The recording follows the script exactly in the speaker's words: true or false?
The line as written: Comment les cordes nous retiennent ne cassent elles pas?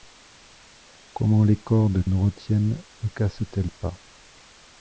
true